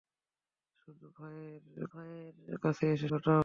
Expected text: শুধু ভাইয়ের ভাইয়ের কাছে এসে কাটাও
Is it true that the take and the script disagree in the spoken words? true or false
false